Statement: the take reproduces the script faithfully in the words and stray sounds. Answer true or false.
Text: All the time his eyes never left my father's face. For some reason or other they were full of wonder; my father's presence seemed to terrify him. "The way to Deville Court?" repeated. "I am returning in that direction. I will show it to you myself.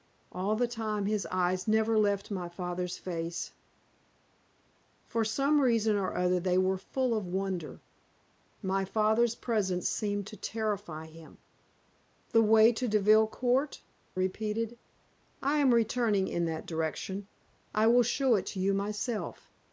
true